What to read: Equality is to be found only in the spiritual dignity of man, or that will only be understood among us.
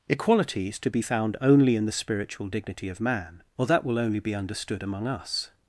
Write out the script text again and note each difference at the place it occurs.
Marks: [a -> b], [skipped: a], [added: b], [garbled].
Equality is to be found only in the spiritual dignity of man, or that will only be understood among us.